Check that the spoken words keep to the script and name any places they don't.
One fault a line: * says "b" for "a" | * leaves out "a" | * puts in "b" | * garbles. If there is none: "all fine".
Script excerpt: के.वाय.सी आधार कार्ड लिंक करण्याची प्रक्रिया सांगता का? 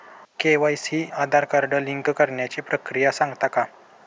all fine